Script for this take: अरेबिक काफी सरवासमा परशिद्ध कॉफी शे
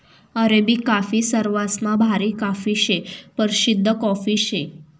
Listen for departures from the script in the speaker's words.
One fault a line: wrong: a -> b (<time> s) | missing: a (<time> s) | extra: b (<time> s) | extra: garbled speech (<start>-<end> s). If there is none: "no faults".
extra: भारी काफी शे (2.0 s)